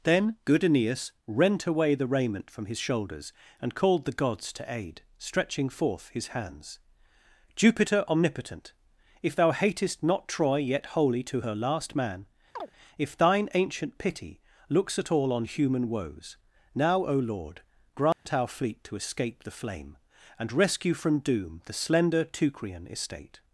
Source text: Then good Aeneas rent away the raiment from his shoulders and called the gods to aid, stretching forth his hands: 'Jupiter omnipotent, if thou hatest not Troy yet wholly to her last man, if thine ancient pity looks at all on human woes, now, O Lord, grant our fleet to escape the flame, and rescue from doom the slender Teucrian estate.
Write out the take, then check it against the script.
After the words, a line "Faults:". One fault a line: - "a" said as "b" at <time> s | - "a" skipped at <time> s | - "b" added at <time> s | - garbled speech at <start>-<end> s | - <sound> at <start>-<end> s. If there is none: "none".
Then good Aeneas rent away the raiment from his shoulders and called the gods to aid, stretching forth his hands: 'Jupiter omnipotent, if thou hatest not Troy yet wholly to her last man, if thine ancient pity looks at all on human woes, now, O Lord, grant our fleet to escape the flame, and rescue from doom the slender Teucrian estate.
Faults:
- chirp at 12.6-12.7 s
- dropout at 18.1-18.3 s